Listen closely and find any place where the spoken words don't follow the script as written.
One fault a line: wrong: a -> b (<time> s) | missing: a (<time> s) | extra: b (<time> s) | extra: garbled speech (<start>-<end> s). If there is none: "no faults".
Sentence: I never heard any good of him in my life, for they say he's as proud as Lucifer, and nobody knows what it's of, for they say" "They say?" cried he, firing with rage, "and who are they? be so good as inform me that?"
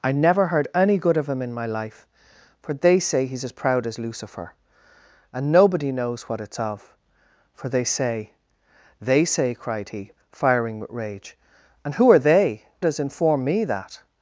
missing: be so good (12.6 s)